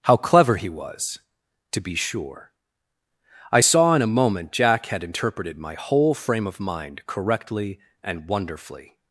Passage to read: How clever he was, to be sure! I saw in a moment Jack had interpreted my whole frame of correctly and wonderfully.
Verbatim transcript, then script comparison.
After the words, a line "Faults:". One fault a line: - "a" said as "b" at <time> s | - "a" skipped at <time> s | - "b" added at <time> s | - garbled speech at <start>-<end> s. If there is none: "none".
How clever he was, to be sure! I saw in a moment Jack had interpreted my whole frame of mind correctly and wonderfully.
Faults:
- "mind" added at 6.6 s